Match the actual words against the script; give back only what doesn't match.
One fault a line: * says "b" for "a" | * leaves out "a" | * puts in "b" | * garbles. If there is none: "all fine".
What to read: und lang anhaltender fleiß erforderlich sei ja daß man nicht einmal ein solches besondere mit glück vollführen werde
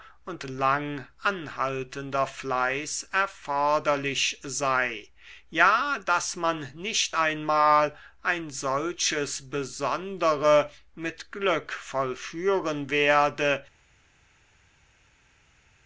all fine